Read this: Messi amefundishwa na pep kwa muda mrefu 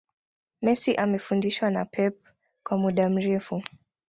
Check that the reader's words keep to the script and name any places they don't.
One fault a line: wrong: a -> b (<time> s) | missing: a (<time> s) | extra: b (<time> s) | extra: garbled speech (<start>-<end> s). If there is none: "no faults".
no faults